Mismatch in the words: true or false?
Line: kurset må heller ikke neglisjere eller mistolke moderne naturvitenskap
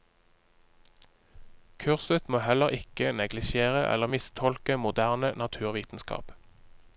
false